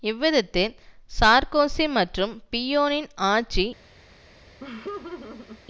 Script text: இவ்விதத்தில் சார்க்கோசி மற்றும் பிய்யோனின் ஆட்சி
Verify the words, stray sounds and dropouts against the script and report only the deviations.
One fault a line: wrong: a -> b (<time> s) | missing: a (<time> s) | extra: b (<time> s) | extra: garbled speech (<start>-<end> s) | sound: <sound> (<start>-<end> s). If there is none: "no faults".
sound: laugh (4.6-5.6 s)